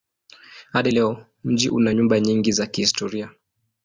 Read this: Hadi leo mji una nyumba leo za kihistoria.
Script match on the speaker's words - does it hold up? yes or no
no